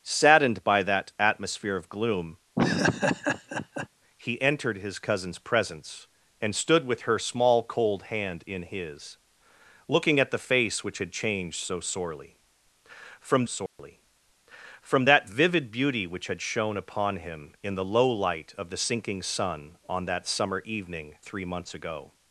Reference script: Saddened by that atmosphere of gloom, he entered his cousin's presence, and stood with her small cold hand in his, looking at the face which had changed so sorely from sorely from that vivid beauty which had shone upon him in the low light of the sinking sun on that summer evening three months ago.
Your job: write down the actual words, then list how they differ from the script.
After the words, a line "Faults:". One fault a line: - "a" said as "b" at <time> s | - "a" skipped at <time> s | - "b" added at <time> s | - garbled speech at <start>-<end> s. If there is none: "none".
Saddened by that atmosphere of gloom, he entered his cousin's presence, and stood with her small cold hand in his, looking at the face which had changed so sorely from sorely from that vivid beauty which had shone upon him in the low light of the sinking sun on that summer evening three months ago.
Faults:
none